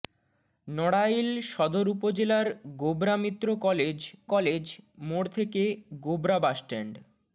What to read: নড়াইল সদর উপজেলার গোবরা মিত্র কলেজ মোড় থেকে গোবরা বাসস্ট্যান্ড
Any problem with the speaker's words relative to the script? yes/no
yes